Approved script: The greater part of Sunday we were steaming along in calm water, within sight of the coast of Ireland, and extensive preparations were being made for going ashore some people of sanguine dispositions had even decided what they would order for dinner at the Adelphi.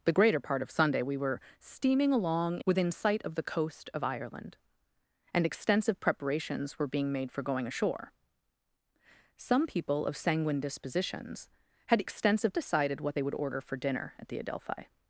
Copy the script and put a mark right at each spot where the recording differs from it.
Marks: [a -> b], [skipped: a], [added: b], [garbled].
The greater part of Sunday we were steaming along [skipped: in calm water,] within sight of the coast of Ireland, and extensive preparations were being made for going ashore some people of sanguine dispositions had [even -> extensive] decided what they would order for dinner at the Adelphi.